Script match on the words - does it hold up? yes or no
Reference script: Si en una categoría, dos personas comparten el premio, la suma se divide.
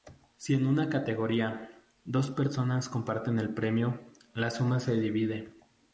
yes